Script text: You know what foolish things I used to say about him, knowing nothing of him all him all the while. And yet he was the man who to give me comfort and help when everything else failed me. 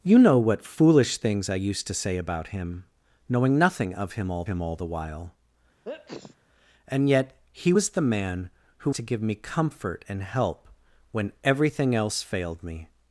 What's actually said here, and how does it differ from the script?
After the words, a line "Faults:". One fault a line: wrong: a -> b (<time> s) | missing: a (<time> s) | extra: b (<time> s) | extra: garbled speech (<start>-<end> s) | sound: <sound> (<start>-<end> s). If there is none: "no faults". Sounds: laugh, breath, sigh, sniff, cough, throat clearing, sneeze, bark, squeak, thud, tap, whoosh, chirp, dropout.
You know what foolish things I used to say about him, knowing nothing of him all him all the while. And yet he was the man who to give me comfort and help when everything else failed me.
Faults:
sound: sneeze (5.8-6.4 s)